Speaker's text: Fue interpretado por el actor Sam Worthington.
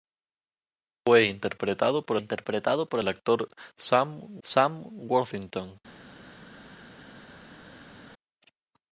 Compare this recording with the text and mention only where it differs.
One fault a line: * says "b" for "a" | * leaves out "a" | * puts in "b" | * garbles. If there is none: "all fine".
* puts in "interpretado por"
* puts in "Sam"